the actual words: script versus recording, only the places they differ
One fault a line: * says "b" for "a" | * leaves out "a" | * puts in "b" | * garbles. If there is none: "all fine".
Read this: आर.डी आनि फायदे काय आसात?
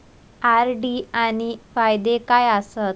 all fine